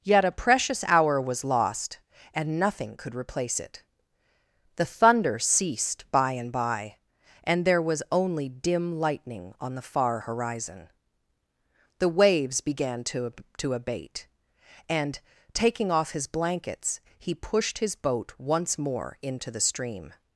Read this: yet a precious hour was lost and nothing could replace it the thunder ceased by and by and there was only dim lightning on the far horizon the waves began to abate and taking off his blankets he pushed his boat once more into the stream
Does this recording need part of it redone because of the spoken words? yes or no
yes